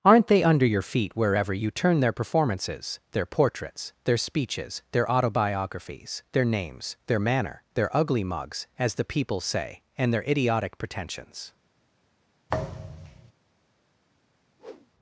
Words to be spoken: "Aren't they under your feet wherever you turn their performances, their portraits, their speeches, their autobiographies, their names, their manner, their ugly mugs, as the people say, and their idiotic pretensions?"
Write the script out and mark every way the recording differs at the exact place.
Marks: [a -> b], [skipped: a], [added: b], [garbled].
"Aren't they under your feet wherever you turn their performances, their portraits, their speeches, their autobiographies, their names, their manner, their ugly mugs, as the people say, and their idiotic pretensions?"